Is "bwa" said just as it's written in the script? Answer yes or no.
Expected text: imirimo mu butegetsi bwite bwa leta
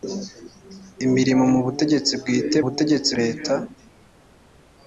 no